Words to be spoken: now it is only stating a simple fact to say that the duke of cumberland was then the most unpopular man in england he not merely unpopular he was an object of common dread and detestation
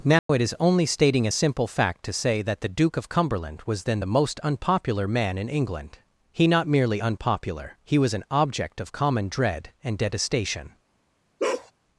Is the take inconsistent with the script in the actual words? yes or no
no